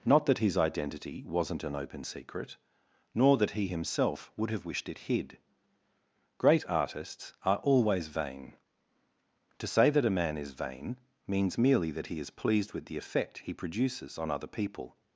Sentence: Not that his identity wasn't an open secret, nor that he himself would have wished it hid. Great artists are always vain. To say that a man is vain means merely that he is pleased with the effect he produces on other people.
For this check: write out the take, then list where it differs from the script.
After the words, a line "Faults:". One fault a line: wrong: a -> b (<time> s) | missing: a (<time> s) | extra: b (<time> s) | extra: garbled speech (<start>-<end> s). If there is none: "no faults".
Not that his identity wasn't an open secret, nor that he himself would have wished it hid. Great artists are always vain. To say that a man is vain means merely that he is pleased with the effect he produces on other people.
Faults:
no faults